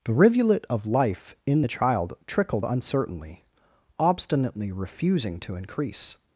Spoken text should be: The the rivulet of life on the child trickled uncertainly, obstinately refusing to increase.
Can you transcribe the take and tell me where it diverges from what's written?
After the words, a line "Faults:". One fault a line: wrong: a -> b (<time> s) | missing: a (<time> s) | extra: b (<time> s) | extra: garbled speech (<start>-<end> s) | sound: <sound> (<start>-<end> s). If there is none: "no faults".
The rivulet of life in the child trickled uncertainly, obstinately refusing to increase.
Faults:
missing: the (0.1 s)
wrong: on -> in (1.4 s)